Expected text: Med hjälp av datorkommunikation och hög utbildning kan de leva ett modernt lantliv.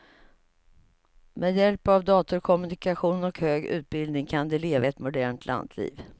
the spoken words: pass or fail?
pass